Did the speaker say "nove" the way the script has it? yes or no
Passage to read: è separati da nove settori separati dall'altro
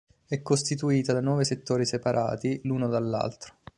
yes